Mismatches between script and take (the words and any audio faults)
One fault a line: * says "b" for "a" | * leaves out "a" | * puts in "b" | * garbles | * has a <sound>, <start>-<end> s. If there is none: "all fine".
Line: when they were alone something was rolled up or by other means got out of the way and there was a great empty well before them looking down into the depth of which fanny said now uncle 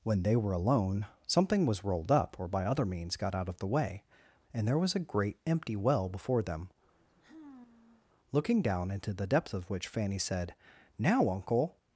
* has a sigh, 6.9-8.1 s